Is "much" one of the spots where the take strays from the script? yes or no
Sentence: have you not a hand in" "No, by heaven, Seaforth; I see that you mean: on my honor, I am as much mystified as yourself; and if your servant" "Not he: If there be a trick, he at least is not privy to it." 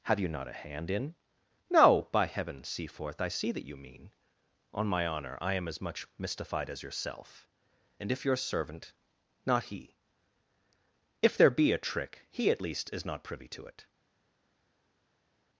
no